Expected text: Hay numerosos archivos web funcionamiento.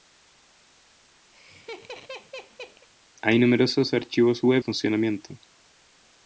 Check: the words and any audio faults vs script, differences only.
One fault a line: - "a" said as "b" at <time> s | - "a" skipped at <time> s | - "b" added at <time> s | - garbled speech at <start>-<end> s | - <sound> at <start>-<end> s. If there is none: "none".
- laugh at 1.3-2.9 s